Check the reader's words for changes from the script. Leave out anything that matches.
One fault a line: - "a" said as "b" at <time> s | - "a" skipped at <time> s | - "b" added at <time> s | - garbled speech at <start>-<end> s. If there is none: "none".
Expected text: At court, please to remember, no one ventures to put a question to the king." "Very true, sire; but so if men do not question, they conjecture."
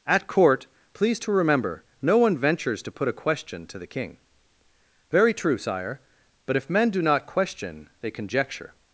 - "so" skipped at 6.6 s